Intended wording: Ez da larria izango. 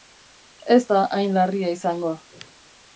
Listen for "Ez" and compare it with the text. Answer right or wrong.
right